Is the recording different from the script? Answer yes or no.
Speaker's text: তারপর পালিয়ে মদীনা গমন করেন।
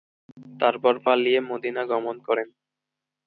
no